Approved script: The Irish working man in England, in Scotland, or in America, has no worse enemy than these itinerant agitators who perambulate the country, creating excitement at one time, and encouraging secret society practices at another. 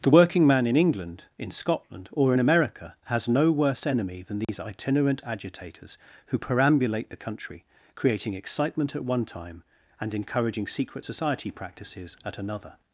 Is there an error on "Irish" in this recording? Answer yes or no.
yes